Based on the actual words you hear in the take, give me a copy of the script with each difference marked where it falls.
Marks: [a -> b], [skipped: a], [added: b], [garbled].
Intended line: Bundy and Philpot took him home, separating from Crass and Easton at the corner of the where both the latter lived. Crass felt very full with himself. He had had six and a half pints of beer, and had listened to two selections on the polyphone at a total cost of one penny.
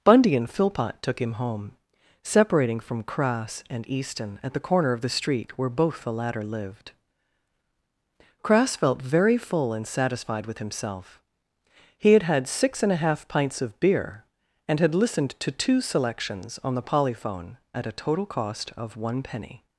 Bundy and Philpot took him home, separating from Crass and Easton at the corner of the [added: street] where both the latter lived. Crass felt very full [added: and satisfied] with himself. He had had six and a half pints of beer, and had listened to two selections on the polyphone at a total cost of one penny.